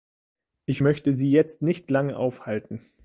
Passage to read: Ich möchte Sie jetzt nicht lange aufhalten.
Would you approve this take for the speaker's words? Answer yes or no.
yes